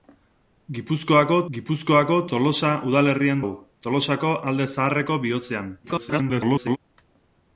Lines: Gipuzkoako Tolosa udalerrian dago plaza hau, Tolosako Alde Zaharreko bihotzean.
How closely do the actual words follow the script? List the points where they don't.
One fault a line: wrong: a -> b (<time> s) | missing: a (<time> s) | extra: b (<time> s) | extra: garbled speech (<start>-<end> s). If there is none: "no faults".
extra: gipuzkoako (1.6 s)
missing: dago plaza (3.4 s)
extra: garbled speech (5.8-6.8 s)